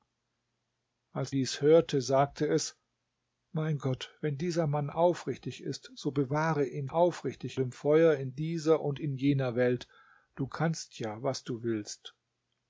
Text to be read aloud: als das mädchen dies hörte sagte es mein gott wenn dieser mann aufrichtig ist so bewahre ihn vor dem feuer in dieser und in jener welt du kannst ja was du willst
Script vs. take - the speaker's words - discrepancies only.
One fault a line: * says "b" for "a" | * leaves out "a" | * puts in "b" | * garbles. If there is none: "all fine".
* leaves out "das mädchen"
* says "aufrichtig" for "vor"